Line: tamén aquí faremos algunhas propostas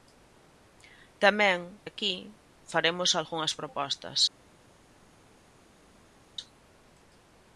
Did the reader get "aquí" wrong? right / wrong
right